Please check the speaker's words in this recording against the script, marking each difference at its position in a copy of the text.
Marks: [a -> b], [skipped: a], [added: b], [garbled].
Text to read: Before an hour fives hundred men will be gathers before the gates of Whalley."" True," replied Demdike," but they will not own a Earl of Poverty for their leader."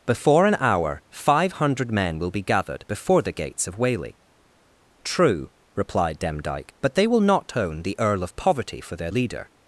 Before an hour [fives -> five] hundred men will be [gathers -> gathered] before the gates of Whalley."" True," replied Demdike," but they will not own [a -> the] Earl of Poverty for their leader."